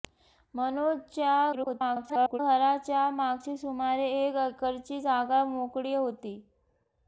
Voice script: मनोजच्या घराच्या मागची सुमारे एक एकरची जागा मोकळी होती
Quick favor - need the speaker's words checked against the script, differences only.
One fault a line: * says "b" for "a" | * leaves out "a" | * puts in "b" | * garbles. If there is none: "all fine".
* garbles